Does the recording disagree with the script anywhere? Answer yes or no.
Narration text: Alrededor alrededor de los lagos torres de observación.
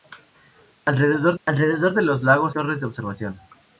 no